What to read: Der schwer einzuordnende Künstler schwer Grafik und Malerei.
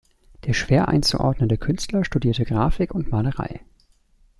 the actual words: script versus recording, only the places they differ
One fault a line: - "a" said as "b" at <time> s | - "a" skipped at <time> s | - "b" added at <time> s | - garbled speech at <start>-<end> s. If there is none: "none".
- "schwer" said as "studierte" at 2.0 s